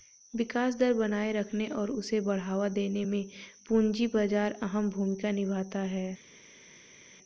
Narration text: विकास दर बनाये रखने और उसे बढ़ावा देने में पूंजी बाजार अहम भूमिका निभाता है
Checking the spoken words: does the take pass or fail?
pass